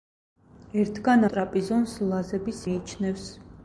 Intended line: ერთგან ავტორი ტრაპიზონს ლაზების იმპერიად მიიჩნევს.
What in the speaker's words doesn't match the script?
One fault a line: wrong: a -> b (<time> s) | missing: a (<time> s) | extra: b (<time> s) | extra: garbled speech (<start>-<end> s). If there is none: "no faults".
missing: ავტორი (1.2 s)
missing: იმპერიად (2.7 s)